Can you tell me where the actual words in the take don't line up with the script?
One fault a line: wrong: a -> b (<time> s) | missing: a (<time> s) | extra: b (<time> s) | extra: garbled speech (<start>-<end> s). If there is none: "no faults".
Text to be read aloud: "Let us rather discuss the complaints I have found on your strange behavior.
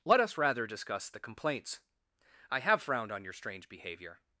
wrong: found -> frowned (2.8 s)